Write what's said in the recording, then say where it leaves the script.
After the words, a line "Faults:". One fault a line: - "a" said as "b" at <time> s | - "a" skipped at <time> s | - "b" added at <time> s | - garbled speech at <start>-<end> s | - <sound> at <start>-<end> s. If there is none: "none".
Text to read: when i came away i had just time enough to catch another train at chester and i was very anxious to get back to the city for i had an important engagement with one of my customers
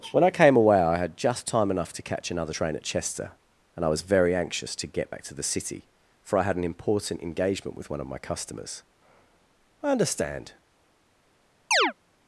when i came away i had just time enough to catch another train at chester and i was very anxious to get back to the city for i had an important engagement with one of my customers i understand
Faults:
- "i understand" added at 9.8 s
- chirp at 11.7-11.9 s